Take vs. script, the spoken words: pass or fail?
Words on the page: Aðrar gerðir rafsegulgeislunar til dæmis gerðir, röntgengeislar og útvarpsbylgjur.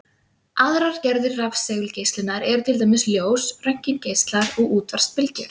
fail